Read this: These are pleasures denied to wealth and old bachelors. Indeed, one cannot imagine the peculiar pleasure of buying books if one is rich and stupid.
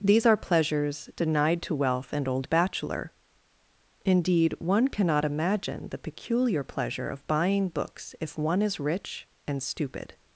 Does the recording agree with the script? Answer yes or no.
no